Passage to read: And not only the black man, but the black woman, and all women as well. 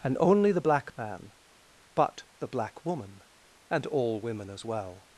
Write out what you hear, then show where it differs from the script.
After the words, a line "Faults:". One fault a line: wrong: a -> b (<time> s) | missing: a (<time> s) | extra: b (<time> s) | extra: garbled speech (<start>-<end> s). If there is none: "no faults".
And only the black man, but the black woman, and all women as well.
Faults:
missing: not (0.2 s)